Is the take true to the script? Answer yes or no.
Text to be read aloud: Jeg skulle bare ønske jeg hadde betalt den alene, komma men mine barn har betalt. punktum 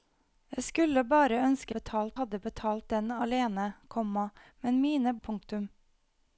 no